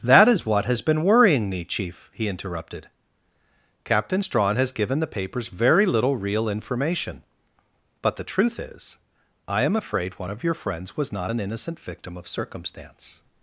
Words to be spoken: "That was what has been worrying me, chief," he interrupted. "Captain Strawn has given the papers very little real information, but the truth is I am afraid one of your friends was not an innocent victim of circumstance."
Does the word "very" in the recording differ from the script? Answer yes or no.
no